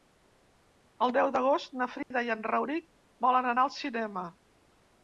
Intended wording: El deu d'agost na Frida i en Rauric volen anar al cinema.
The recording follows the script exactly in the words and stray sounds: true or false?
false